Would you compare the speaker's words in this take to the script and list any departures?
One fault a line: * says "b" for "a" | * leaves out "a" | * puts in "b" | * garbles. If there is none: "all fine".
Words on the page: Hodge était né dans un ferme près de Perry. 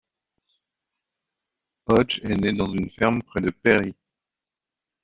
* says "est" for "était"
* says "une" for "un"